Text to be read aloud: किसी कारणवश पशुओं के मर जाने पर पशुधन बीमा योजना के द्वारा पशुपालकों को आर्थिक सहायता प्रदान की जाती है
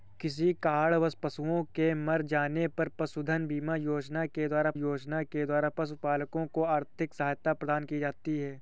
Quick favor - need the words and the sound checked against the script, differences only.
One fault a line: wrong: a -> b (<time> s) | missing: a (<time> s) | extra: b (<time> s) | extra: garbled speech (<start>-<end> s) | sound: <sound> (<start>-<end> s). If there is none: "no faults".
extra: योजना के द्वारा (4.7 s)